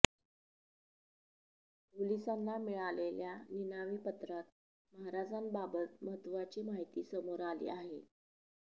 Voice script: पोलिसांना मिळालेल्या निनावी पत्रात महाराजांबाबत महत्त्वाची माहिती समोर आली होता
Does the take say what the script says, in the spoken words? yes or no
no